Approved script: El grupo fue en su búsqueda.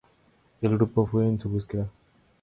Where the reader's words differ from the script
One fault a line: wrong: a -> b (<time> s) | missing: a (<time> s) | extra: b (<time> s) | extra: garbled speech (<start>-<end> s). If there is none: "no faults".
no faults